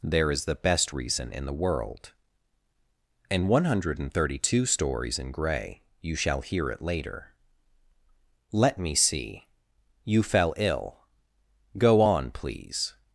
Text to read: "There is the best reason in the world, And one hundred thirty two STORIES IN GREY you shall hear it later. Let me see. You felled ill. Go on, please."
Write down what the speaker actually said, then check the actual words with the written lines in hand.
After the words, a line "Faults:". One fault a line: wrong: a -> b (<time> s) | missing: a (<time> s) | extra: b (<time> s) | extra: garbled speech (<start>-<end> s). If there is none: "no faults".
"There is the best reason in the world, And one hundred thirty two STORIES IN GREY you shall hear it later. Let me see. You fell ill. Go on, please."
Faults:
wrong: felled -> fell (10.2 s)